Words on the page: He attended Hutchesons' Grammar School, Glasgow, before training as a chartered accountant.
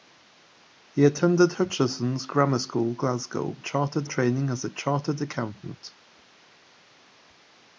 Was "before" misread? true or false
true